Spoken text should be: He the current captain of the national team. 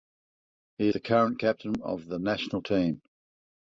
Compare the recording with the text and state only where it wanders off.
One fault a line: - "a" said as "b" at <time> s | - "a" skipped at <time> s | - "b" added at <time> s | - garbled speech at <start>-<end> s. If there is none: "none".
none